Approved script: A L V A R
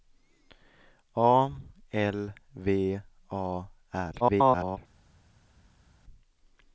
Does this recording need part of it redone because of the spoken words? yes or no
yes